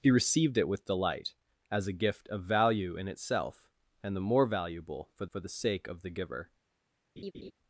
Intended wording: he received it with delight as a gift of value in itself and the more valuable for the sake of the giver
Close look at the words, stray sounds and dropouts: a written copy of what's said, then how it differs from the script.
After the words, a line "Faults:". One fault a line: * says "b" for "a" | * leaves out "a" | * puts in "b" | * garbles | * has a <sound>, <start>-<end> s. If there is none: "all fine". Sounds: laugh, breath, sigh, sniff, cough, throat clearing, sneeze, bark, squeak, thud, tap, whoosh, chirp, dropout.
he received it with delight as a gift of value in itself and the more valuable for for the sake of the giver
Faults:
* puts in "for"
* has a laugh, 7.2-7.5 s